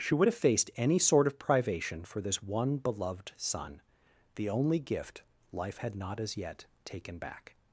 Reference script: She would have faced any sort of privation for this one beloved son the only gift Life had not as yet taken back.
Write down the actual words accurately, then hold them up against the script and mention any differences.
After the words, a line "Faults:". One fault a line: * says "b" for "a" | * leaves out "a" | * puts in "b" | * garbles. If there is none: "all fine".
She would have faced any sort of privation for this one beloved son the only gift Life had not as yet taken back.
Faults:
all fine